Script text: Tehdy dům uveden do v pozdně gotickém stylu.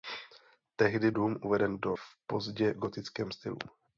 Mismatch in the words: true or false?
false